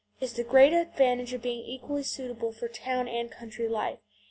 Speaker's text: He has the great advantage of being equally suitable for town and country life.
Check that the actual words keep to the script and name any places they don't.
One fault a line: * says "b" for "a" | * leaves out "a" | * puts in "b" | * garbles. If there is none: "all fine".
all fine